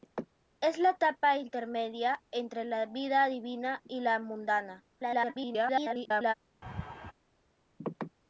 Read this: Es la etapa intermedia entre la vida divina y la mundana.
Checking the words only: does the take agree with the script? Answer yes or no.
no